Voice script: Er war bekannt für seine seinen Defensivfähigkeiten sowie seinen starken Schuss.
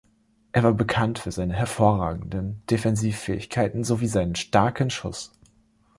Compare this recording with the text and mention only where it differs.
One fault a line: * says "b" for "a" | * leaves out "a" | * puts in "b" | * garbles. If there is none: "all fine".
* says "hervorragenden" for "seinen"